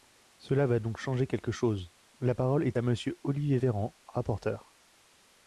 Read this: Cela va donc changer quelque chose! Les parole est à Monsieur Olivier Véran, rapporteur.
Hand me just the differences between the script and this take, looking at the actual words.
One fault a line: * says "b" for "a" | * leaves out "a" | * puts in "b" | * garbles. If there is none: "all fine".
* says "La" for "Les"